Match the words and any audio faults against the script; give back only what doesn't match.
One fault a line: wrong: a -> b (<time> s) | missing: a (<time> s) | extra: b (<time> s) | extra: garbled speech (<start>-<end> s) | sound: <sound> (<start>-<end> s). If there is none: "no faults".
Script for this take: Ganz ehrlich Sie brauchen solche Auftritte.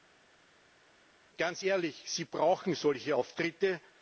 no faults